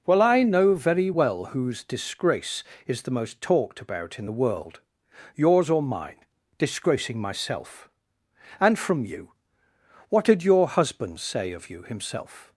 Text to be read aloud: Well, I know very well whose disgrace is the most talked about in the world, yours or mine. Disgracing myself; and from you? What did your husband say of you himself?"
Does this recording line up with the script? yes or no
yes